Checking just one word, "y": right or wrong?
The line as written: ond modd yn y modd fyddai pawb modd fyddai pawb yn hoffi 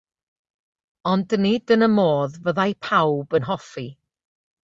right